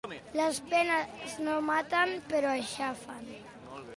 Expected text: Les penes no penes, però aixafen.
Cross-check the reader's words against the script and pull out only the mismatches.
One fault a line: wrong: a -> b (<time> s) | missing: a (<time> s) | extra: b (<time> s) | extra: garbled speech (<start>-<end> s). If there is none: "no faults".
wrong: penes -> maten (1.7 s)